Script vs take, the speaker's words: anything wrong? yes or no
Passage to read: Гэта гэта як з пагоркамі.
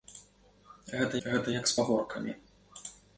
no